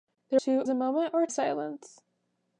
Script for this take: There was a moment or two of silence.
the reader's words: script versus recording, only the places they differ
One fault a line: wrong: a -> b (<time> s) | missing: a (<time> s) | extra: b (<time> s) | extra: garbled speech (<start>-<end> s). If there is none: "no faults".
wrong: was -> two (0.3 s)
missing: two of (1.3 s)